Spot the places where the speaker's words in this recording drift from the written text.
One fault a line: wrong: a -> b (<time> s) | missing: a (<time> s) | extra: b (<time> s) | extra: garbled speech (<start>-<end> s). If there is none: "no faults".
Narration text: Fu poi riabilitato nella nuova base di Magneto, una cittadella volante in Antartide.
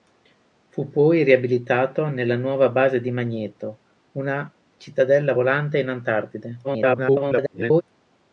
extra: garbled speech (6.6-7.8 s)